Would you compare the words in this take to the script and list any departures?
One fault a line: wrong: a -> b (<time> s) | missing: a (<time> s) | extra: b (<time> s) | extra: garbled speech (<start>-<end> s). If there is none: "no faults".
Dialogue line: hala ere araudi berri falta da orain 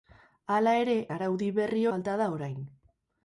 no faults